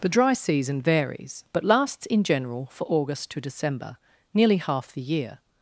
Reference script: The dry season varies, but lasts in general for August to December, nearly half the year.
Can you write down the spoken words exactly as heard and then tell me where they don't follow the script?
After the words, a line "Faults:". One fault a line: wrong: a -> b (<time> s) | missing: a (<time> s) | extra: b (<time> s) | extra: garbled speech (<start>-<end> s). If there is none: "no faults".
The dry season varies, but lasts in general for August to December, nearly half the year.
Faults:
no faults